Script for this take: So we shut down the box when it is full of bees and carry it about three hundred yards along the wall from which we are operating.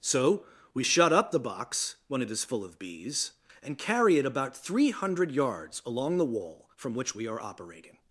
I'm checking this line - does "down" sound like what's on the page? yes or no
no